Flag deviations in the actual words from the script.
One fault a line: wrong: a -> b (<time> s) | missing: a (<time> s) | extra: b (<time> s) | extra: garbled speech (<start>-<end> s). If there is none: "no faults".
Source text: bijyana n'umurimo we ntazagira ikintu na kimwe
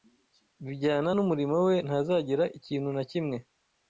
no faults